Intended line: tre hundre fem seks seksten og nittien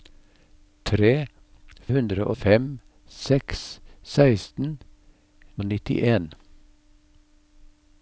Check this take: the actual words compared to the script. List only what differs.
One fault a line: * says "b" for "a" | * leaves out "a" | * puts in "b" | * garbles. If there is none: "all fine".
all fine